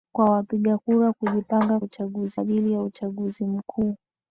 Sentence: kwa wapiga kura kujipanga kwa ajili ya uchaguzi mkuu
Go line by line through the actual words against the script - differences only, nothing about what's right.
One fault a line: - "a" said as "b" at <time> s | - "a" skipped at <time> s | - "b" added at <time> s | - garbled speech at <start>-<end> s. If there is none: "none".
- "kwa" said as "uchaguzi" at 1.8 s